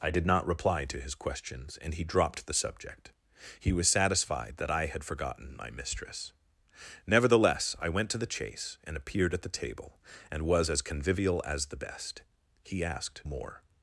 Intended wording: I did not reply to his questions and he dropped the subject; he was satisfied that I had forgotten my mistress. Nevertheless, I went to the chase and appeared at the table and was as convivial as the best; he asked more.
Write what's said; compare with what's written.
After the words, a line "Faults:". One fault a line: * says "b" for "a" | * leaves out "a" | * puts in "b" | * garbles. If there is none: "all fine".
I did not reply to his questions and he dropped the subject; he was satisfied that I had forgotten my mistress. Nevertheless, I went to the chase and appeared at the table and was as convivial as the best; he asked more.
Faults:
all fine